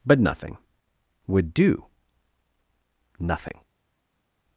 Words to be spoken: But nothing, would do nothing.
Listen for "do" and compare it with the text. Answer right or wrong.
right